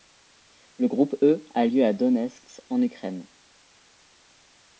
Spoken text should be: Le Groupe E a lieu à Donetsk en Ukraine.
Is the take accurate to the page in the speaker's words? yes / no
yes